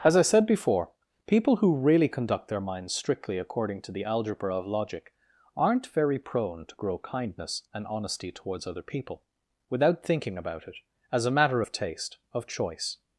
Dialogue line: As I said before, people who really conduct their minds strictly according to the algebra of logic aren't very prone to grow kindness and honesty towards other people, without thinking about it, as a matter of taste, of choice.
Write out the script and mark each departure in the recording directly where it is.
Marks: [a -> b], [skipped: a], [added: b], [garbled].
As I said before, people who really conduct their minds strictly according to the algebra of logic aren't very prone to grow kindness and honesty towards other people, without thinking about it, as a matter of taste, of choice.